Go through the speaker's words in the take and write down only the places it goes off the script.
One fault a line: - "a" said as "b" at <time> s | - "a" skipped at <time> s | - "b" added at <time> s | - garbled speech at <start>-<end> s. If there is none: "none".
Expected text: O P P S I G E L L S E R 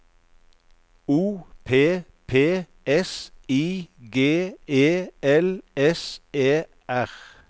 - "L" skipped at 5.6 s